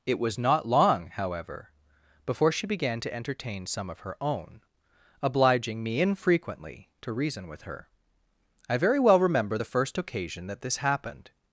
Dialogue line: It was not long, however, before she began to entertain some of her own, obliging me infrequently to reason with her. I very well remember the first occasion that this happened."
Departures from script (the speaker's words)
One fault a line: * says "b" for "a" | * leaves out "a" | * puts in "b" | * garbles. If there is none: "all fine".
all fine